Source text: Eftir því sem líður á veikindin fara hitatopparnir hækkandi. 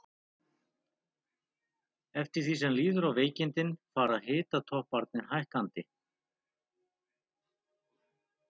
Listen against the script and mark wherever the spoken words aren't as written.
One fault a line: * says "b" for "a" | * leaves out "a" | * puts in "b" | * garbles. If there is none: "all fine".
all fine